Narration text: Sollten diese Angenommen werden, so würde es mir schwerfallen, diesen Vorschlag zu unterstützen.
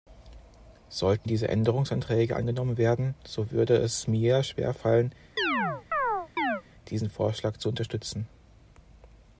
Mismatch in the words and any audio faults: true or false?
true